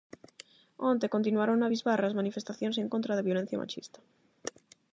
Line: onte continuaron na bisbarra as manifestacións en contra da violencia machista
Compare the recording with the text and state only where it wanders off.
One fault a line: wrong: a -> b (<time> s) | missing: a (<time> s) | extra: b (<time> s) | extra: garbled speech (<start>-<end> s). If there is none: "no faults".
no faults